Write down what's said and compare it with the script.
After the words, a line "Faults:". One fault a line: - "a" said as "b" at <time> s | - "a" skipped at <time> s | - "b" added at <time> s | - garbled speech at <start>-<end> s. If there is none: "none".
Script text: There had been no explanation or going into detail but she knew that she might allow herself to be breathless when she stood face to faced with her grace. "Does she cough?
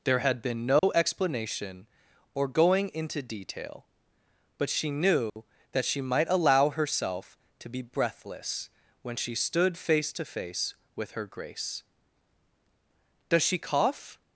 There had been no explanation or going into detail but she knew that she might allow herself to be breathless when she stood face to face with her grace. "Does she cough?
Faults:
- "faced" said as "face" at 10.2 s